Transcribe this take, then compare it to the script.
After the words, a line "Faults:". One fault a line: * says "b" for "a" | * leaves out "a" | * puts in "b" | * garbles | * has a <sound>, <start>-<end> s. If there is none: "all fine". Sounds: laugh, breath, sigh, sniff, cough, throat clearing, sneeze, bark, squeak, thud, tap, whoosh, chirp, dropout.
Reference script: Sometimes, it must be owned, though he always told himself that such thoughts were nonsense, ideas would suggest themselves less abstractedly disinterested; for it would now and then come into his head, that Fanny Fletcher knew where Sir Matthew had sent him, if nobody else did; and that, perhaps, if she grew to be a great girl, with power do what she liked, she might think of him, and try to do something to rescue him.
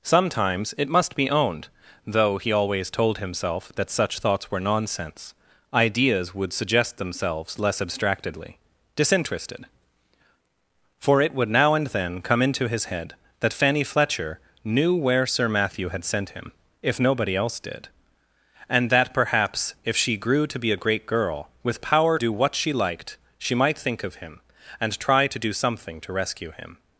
Sometimes, it must be owned, though he always told himself that such thoughts were nonsense, ideas would suggest themselves less abstractedly disinterested; for it would now and then come into his head, that Fanny Fletcher knew where Sir Matthew had sent him, if nobody else did; and that, perhaps, if she grew to be a great girl, with power do what she liked, she might think of him, and try to do something to rescue him.
Faults:
all fine